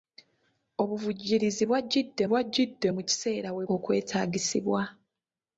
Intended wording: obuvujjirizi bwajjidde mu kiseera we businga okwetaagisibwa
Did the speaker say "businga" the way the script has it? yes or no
no